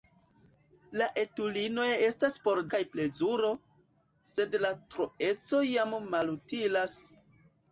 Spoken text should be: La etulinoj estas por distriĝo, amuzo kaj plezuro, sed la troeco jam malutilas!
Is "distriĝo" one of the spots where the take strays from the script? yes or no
yes